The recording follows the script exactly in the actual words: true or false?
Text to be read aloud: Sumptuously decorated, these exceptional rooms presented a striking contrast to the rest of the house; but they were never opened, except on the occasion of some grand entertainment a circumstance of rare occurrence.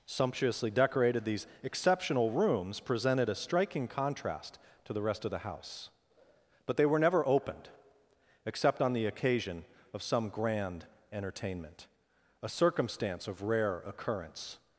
true